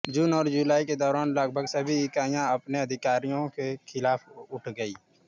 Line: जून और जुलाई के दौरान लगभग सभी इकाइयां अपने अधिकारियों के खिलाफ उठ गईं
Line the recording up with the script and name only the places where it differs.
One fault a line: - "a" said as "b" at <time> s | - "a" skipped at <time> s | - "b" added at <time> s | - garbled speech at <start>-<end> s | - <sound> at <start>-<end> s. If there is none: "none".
none